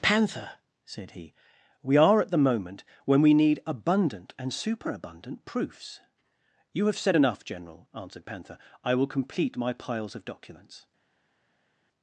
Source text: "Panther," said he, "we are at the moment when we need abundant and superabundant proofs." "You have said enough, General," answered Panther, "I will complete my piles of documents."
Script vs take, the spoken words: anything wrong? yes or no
no